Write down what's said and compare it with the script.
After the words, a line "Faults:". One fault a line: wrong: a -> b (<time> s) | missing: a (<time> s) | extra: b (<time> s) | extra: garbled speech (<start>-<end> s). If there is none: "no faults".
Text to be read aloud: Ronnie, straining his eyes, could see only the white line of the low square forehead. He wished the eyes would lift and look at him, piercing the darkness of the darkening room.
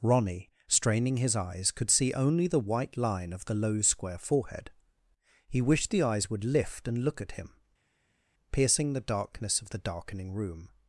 Ronnie, straining his eyes, could see only the white line of the low square forehead. He wished the eyes would lift and look at him, piercing the darkness of the darkening room.
Faults:
no faults